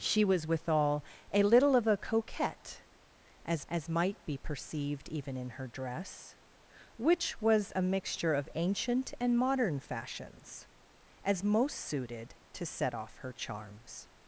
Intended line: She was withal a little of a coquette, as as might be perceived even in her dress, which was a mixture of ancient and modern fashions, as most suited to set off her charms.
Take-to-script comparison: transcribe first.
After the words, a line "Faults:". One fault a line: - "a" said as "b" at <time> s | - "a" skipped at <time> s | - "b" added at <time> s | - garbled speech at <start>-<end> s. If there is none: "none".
She was withal a little of a coquette, as as might be perceived even in her dress, which was a mixture of ancient and modern fashions, as most suited to set off her charms.
Faults:
none